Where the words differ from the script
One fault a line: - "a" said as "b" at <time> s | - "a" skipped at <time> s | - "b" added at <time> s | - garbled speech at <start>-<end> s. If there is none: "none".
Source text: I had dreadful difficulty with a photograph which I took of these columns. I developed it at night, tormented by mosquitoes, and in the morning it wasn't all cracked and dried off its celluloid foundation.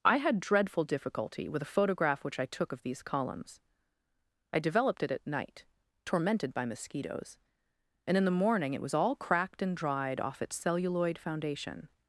- "wasn't" said as "was" at 8.8 s